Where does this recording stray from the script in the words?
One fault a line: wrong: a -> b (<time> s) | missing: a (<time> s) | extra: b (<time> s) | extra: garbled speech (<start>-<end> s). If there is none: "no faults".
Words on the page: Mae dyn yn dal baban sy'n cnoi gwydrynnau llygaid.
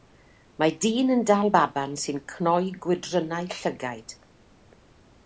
no faults